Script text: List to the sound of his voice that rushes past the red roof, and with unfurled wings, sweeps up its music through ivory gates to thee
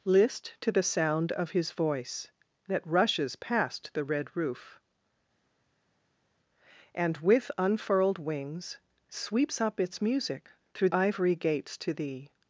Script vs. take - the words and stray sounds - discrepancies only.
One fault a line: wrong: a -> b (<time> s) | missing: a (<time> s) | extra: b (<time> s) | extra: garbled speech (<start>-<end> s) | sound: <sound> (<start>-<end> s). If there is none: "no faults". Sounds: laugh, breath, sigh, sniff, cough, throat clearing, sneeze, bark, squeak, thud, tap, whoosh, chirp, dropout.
no faults